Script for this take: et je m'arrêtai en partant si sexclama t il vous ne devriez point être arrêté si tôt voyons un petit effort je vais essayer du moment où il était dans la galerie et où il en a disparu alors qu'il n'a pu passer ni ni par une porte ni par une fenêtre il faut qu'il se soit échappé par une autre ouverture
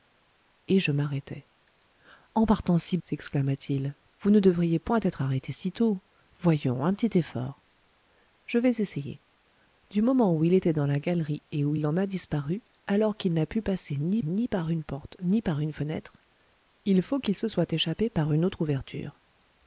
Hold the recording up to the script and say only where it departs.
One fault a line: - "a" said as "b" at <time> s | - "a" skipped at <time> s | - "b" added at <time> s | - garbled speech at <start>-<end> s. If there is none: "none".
none